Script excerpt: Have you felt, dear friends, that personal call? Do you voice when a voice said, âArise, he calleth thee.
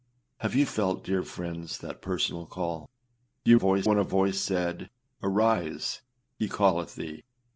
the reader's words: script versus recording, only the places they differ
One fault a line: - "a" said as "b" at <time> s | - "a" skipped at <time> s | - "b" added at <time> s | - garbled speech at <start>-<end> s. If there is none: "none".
none